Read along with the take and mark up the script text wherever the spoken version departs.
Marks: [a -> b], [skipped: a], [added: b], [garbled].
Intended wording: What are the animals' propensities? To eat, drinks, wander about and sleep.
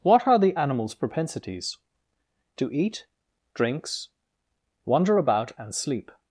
What are the animals' propensities? To eat, drinks, wander about and sleep.